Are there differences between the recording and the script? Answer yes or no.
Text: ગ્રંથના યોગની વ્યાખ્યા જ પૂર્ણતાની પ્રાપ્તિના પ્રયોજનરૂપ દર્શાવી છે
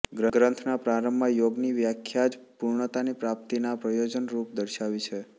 yes